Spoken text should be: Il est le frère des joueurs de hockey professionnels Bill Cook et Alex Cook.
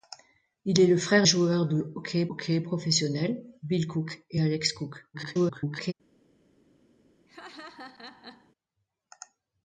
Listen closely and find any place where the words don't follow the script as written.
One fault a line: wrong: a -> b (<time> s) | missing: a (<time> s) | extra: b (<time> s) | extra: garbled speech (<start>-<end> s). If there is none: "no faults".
missing: des (1.3 s)
extra: hockey (2.3 s)
extra: garbled speech (5.1-5.9 s)